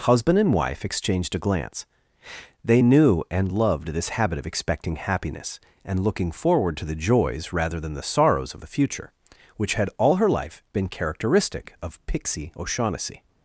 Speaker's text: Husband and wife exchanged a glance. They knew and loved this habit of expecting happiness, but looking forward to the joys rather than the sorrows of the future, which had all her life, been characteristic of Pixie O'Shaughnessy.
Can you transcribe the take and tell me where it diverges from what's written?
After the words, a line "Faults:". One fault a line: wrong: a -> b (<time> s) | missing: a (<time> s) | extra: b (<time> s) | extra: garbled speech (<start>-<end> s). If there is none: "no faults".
Husband and wife exchanged a glance. They knew and loved this habit of expecting happiness, and looking forward to the joys rather than the sorrows of the future, which had all her life, been characteristic of Pixie O'Shaughnessy.
Faults:
wrong: but -> and (5.8 s)